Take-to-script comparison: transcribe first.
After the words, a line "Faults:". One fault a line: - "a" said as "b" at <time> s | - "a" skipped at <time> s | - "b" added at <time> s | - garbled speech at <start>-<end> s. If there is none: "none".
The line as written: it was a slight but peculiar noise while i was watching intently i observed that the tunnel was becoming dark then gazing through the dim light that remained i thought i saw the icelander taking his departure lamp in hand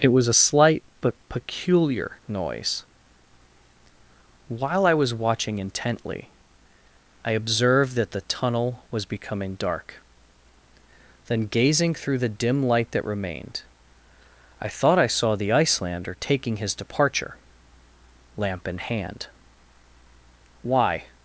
it was a slight but peculiar noise while i was watching intently i observed that the tunnel was becoming dark then gazing through the dim light that remained i thought i saw the icelander taking his departure lamp in hand why
Faults:
- "why" added at 20.6 s